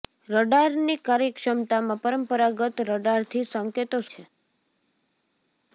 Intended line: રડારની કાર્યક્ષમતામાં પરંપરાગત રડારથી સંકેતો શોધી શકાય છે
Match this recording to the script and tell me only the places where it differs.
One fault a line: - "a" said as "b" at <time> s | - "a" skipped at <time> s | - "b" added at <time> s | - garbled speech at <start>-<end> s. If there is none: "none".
- "શોધી શકાય" skipped at 4.0 s